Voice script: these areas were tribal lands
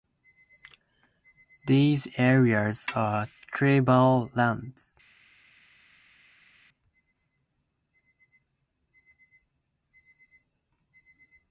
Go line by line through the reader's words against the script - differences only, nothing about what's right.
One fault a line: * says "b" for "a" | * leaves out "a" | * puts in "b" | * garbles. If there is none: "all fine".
* says "are" for "were"